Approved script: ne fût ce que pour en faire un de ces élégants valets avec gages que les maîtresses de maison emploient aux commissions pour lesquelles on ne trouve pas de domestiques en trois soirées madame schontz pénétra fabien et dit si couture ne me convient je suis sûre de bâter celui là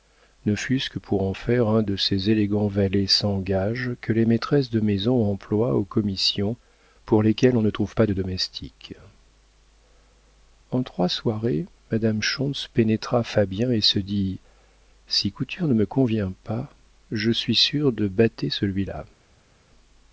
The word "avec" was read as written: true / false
false